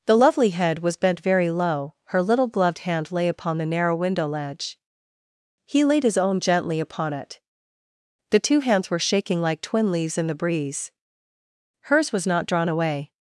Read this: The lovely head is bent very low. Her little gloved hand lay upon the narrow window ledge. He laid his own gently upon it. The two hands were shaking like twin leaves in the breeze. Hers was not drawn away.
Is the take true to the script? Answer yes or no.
no